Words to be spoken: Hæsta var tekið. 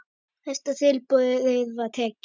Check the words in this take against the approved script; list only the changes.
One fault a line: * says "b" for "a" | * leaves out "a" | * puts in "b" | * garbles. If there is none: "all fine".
* puts in "tilboði"